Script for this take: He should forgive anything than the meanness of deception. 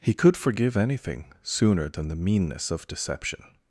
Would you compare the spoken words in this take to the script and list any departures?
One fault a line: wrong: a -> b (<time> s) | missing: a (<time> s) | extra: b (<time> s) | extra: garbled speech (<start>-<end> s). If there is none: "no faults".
wrong: should -> could (0.1 s)
extra: sooner (1.4 s)